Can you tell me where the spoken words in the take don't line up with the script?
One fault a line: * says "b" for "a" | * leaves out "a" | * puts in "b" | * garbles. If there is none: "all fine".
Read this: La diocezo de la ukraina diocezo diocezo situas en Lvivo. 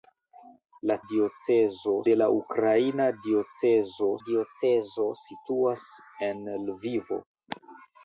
all fine